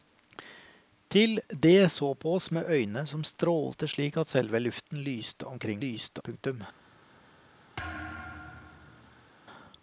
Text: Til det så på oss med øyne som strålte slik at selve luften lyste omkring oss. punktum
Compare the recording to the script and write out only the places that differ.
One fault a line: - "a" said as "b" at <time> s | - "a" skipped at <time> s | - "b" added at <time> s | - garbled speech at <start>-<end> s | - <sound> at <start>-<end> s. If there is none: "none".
- "oss" said as "lyste" at 5.8 s
- thud at 7.8-9.3 s